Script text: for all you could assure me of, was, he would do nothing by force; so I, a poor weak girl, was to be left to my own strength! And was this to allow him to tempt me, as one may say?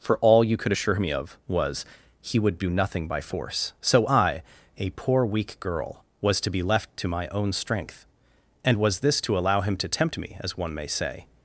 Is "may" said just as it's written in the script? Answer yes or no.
yes